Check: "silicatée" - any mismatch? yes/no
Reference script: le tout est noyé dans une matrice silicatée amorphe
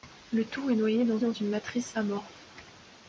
yes